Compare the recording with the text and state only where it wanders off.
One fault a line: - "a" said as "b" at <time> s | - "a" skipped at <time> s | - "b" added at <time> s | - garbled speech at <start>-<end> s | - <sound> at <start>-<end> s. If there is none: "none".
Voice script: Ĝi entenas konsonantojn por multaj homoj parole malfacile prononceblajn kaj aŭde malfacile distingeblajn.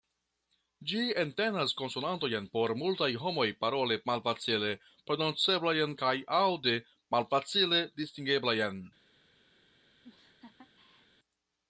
- laugh at 10.0-11.1 s